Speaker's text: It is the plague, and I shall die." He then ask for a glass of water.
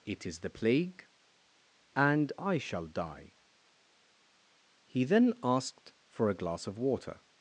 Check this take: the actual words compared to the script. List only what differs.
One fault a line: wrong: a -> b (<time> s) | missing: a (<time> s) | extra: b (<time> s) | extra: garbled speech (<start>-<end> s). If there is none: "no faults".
wrong: ask -> asked (5.4 s)